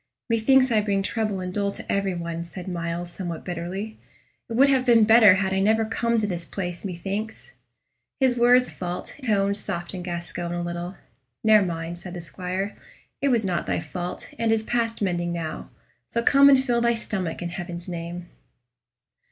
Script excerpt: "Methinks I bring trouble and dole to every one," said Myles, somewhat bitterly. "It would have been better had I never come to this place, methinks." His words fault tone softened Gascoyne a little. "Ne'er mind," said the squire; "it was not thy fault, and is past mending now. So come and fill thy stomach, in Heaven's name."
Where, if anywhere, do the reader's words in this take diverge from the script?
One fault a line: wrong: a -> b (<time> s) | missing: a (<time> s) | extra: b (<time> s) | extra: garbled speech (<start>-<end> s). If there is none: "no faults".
no faults